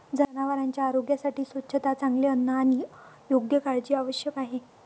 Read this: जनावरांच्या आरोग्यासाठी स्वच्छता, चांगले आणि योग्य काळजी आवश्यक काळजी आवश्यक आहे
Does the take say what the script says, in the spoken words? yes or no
no